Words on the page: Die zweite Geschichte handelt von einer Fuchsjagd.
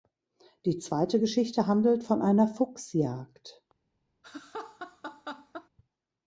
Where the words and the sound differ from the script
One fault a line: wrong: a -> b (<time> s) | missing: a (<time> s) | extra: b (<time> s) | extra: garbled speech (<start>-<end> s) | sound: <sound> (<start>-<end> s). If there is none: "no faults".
sound: laugh (4.2-5.7 s)